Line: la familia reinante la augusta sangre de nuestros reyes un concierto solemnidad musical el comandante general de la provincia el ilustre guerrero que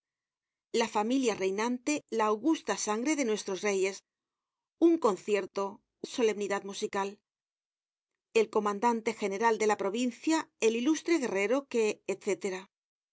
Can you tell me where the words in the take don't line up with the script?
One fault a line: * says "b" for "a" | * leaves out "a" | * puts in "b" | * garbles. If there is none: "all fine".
all fine